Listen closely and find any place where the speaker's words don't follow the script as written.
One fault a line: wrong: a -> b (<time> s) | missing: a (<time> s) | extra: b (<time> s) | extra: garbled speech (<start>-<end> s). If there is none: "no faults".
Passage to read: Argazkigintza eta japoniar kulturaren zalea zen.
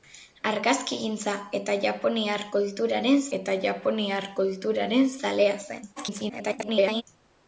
extra: eta japoniar kulturaren (3.4 s)
extra: garbled speech (6.0-7.0 s)